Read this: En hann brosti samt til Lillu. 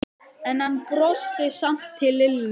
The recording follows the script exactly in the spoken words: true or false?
true